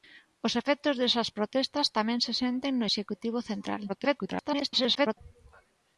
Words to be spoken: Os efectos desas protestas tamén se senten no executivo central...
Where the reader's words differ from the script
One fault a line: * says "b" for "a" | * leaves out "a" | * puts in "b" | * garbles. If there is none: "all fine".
* garbles